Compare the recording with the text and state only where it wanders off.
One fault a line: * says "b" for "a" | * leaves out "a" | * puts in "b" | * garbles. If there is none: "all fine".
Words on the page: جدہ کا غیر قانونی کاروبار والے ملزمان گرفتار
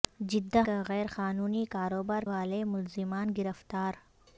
all fine